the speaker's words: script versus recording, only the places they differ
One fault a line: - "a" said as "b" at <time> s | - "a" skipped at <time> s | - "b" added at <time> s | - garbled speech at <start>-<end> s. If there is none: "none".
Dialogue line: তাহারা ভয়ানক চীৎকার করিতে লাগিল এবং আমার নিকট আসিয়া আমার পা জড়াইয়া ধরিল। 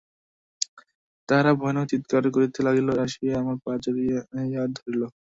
- "এবং আমার নিকট" skipped at 2.9 s